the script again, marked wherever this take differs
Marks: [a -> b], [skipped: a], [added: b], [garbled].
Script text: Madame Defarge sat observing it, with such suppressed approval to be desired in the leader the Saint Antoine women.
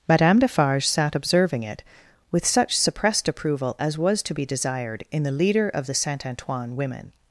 Madame Defarge sat observing it, with such suppressed approval [added: as was] to be desired in the leader [added: of] the Saint Antoine women.